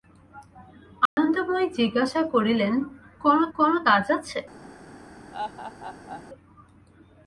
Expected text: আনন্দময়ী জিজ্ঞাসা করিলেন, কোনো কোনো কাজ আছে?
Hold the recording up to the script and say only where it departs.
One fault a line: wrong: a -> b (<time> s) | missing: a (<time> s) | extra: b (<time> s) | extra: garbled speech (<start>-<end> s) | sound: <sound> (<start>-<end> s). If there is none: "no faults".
sound: dropout (1.1-1.2 s)
sound: laugh (5.3-6.2 s)